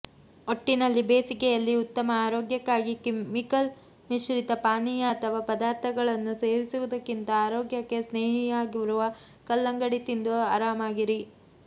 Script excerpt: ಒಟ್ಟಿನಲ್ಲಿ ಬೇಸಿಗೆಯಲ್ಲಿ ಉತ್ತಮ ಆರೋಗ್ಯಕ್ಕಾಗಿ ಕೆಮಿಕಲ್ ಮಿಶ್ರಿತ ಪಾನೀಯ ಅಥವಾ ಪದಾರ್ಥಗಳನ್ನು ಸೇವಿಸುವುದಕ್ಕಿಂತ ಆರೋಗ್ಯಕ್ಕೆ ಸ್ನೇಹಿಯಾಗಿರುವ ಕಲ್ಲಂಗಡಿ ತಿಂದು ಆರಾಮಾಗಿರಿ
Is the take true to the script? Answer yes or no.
yes